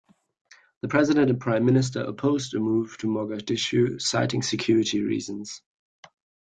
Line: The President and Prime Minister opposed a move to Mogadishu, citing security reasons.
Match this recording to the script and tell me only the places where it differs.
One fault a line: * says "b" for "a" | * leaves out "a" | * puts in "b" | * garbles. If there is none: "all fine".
all fine